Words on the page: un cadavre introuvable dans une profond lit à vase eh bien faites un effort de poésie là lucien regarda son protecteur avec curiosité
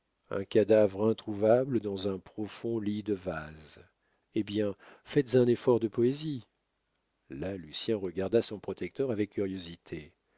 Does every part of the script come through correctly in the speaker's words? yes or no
no